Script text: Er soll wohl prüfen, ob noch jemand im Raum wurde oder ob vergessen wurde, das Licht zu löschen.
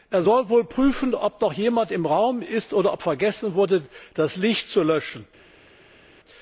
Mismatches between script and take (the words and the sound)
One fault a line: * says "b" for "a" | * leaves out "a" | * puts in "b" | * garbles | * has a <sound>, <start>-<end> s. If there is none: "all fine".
* says "ist" for "wurde"